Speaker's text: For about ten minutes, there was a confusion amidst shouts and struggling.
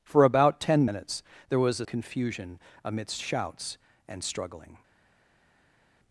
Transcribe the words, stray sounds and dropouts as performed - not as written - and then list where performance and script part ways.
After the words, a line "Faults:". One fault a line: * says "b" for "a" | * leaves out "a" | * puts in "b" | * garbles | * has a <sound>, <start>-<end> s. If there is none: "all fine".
For about ten minutes, there was a confusion amidst shouts and struggling.
Faults:
all fine